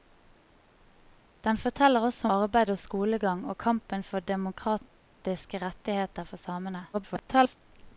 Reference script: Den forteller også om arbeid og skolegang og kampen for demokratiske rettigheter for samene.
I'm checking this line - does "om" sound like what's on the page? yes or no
no